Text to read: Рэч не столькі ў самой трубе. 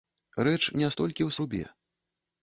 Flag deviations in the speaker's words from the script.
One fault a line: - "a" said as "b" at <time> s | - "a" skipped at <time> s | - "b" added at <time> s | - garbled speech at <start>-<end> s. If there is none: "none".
- "самой" skipped at 1.3 s